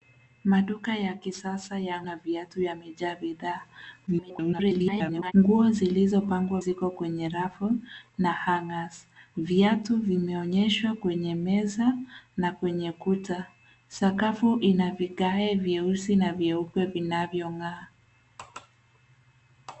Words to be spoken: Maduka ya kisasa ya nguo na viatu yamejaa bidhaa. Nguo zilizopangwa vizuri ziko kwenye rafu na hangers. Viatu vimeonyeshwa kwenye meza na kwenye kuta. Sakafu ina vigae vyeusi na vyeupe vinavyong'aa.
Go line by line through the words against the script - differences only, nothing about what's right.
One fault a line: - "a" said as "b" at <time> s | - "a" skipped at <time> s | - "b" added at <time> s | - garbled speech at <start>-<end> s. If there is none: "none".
- "nguo" skipped at 2.0 s
- garbled speech at 4.1-5.3 s
- "vizuri" skipped at 6.6 s